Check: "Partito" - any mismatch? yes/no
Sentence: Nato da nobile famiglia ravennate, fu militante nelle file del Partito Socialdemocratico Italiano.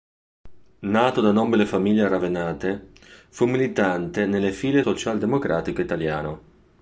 yes